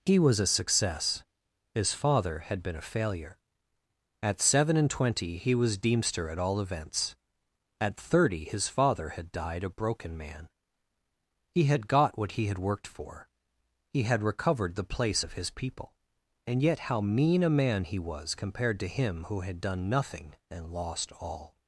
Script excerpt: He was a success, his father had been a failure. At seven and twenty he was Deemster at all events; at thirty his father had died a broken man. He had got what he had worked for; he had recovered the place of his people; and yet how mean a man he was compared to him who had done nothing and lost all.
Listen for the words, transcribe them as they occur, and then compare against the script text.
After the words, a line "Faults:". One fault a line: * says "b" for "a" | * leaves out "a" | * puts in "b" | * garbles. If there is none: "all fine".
He was a success, his father had been a failure. At seven and twenty he was Deemster at all events; at thirty his father had died a broken man. He had got what he had worked for; he had recovered the place of his people; and yet how mean a man he was compared to him who had done nothing and lost all.
Faults:
all fine